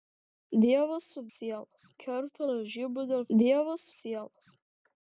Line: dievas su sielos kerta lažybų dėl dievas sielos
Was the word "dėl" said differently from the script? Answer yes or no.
no